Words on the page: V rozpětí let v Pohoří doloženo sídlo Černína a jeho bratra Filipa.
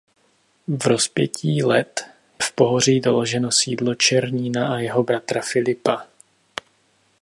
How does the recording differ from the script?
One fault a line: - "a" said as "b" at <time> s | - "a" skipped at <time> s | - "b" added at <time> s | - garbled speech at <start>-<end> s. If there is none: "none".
none